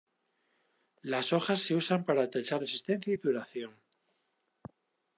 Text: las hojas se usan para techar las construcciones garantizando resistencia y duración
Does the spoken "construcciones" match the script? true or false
false